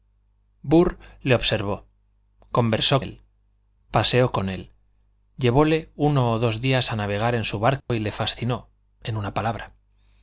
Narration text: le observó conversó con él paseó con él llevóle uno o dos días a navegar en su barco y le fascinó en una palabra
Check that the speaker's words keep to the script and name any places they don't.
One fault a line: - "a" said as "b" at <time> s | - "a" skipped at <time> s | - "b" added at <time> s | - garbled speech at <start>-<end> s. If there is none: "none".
- "con" skipped at 3.0 s